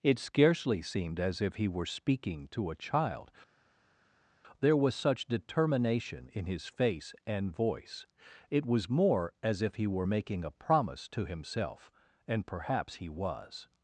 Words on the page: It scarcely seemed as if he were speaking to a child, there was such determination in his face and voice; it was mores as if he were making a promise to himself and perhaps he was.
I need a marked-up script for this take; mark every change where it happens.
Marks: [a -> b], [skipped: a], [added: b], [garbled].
It scarcely seemed as if he were speaking to a child, there was such determination in his face and voice; it was [mores -> more] as if he were making a promise to himself and perhaps he was.